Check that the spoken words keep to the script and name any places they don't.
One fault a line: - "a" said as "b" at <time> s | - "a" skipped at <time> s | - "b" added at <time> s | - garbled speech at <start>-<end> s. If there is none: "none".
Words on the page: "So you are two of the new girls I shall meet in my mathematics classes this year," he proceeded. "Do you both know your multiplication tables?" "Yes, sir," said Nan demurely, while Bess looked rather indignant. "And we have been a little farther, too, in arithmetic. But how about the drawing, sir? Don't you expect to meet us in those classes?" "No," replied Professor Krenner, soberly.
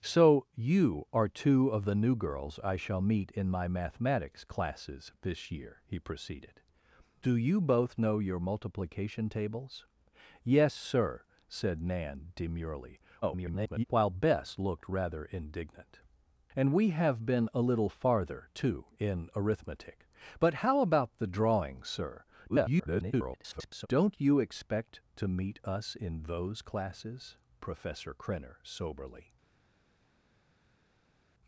- garbled speech at 13.2-13.8 s
- garbled speech at 22.5-23.9 s
- "No replied" skipped at 27.4 s